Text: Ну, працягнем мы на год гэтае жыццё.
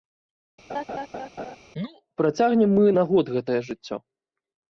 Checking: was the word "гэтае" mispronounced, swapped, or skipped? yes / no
no